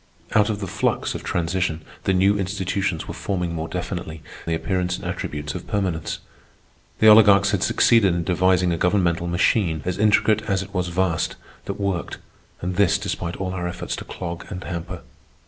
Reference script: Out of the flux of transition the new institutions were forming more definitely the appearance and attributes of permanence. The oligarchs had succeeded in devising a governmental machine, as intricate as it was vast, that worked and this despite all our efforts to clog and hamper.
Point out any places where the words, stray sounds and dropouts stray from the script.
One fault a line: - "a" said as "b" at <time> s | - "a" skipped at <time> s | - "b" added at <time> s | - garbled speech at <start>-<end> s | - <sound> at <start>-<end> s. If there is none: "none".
none